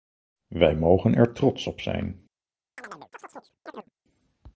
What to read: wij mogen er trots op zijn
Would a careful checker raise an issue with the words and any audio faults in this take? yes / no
yes